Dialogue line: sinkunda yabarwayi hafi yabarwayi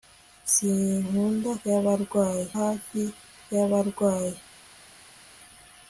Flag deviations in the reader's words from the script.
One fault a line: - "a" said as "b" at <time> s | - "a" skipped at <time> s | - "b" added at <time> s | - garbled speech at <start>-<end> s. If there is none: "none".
none